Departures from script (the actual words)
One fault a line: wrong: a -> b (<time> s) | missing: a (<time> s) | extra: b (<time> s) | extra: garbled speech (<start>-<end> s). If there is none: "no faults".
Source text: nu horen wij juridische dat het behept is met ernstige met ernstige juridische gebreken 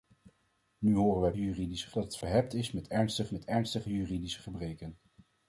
no faults